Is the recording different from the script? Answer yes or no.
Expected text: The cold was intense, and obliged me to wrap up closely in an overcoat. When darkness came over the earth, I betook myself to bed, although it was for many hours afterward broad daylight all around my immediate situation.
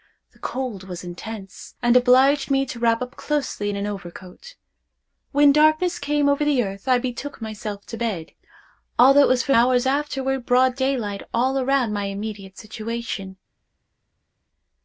yes